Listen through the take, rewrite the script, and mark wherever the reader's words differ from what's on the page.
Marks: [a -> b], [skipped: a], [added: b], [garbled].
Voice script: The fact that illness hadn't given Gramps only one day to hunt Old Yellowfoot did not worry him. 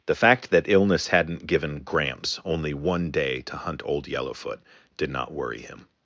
The fact that illness hadn't given Gramps only one day to hunt Old Yellowfoot did not worry him.